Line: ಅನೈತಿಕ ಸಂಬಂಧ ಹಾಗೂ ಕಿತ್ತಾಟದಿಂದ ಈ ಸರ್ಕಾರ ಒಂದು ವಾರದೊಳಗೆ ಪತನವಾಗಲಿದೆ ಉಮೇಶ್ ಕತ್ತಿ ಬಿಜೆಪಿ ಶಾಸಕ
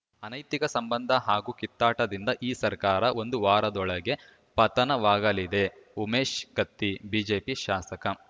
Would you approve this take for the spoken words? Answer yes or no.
yes